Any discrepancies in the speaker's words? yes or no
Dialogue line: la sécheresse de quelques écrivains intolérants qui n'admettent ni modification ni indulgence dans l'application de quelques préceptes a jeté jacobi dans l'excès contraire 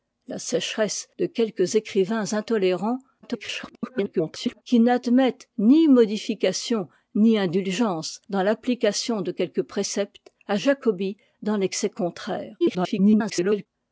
yes